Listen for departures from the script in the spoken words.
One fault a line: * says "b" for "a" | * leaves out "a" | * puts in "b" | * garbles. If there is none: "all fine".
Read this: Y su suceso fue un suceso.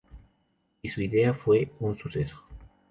* says "idea" for "suceso"